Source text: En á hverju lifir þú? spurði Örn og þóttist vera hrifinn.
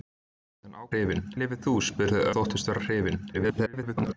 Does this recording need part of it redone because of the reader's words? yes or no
yes